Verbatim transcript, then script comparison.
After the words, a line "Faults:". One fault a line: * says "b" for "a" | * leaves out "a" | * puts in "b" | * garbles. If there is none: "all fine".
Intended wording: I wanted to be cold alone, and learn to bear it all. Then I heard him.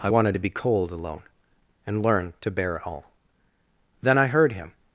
I wanted to be cold alone, and learn to bear it all. Then I heard him.
Faults:
all fine